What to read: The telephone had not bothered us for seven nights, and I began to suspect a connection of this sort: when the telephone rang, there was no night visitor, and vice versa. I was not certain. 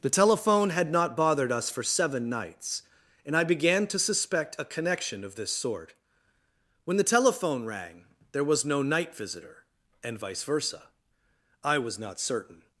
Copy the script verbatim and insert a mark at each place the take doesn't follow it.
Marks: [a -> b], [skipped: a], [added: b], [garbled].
The telephone had not bothered us for seven nights, and I began to suspect a connection of this sort: when the telephone rang, there was no night visitor, and vice versa. I was not certain.